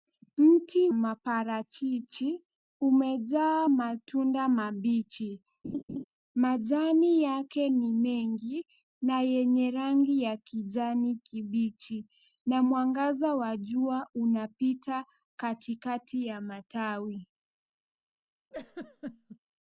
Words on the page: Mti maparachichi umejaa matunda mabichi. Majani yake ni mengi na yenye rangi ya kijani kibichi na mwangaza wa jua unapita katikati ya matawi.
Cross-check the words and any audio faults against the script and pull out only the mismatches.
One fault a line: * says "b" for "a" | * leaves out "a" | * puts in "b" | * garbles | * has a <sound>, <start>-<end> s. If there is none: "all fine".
* has a laugh, 5.6-6.0 s
* has a laugh, 18.5-19.4 s